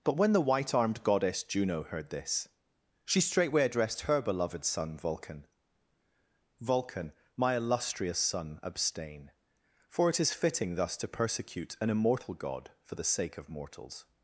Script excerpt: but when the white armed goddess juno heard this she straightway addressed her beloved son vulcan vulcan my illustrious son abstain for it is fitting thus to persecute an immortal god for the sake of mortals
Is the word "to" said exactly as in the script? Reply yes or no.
yes